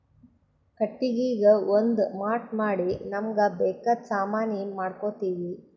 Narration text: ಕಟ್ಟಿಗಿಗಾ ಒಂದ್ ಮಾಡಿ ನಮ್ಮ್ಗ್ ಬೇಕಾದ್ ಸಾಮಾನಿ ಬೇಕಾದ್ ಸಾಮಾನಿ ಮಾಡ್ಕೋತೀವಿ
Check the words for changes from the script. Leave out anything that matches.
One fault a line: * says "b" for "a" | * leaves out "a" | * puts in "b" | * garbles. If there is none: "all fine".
* puts in "ಮಾಟ್"
* leaves out "ಬೇಕಾದ್ ಸಾಮಾನಿ"